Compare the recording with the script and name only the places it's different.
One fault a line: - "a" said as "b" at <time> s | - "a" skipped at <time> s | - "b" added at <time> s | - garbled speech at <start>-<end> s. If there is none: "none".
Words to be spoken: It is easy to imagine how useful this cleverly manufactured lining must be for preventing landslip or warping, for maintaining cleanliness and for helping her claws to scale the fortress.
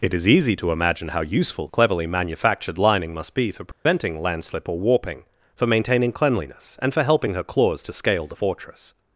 - "this" skipped at 1.7 s